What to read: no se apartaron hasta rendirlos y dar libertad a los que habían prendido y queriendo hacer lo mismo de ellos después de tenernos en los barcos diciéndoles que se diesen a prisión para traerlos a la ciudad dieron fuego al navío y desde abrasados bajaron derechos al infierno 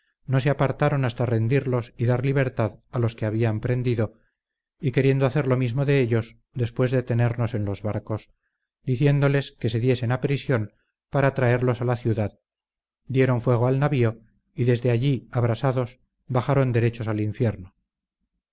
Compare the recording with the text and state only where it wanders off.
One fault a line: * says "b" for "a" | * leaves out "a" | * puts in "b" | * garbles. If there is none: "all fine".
* puts in "allí"